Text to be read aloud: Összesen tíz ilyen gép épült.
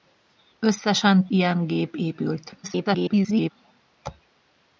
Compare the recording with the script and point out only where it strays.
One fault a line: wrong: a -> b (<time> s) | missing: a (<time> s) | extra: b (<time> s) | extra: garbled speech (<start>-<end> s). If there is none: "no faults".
missing: tíz (1.3 s)
extra: garbled speech (2.6-3.5 s)